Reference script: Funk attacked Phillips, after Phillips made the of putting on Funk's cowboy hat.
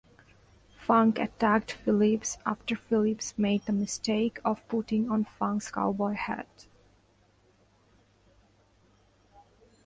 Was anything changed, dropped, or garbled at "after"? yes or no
no